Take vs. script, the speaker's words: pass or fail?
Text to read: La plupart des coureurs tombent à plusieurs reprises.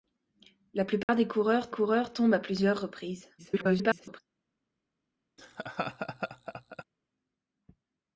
fail